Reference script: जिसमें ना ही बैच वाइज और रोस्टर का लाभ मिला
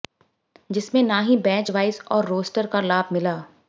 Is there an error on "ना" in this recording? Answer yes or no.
no